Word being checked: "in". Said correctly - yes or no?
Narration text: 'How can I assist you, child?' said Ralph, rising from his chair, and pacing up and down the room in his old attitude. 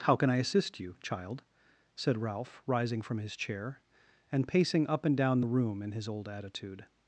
yes